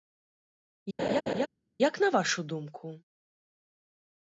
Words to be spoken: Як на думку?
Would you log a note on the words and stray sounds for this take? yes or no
yes